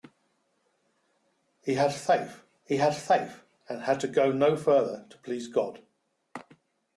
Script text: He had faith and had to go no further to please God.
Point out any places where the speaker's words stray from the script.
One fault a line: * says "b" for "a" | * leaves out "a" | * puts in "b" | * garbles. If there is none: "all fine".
* puts in "he had faith"